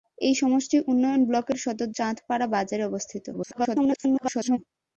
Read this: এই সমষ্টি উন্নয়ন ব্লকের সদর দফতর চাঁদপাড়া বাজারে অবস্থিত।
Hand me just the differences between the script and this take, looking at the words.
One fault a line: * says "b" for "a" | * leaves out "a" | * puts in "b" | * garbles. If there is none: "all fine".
* leaves out "দফতর"
* garbles